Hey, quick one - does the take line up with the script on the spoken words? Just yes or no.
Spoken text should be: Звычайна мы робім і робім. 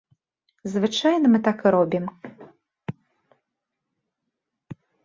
no